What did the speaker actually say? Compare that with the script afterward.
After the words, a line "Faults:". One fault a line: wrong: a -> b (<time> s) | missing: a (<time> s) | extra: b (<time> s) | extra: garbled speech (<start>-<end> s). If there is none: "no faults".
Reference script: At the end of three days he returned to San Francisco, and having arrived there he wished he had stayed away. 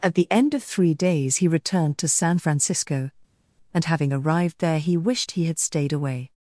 At the end of three days he returned to San Francisco, and having arrived there he wished he had stayed away.
Faults:
no faults